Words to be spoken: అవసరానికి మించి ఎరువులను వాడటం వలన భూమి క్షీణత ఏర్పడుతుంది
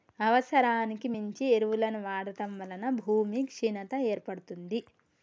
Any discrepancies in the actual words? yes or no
no